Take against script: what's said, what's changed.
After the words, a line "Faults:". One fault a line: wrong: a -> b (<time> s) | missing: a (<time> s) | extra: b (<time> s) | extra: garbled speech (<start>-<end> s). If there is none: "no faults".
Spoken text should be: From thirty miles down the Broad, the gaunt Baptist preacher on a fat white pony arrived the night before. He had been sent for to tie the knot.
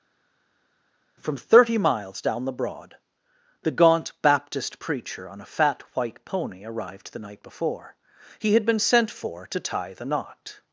From thirty miles down the Broad, the gaunt Baptist preacher on a fat white pony arrived the night before. He had been sent for to tie the knot.
Faults:
no faults